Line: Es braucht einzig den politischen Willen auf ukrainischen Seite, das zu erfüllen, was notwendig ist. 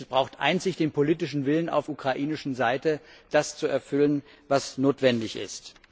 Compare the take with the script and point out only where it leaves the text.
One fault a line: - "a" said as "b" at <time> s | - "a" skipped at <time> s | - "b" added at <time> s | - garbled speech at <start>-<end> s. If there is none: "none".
none